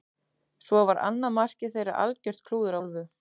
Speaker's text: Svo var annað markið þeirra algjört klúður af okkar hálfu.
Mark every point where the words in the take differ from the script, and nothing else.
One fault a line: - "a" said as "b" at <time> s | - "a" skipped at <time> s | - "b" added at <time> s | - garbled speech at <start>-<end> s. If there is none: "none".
- "af okkar" skipped at 2.8 s